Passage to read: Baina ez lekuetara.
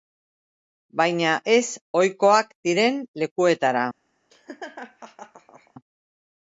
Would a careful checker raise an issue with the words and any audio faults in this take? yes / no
yes